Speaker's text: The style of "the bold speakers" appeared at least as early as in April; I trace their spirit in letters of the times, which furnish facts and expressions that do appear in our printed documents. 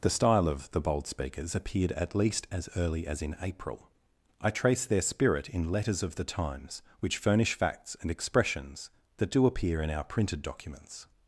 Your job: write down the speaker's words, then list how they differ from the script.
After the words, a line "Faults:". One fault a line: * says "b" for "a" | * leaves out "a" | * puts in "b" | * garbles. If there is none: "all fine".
The style of "the bold speakers" appeared at least as early as in April; I trace their spirit in letters of the times, which furnish facts and expressions that do appear in our printed documents.
Faults:
all fine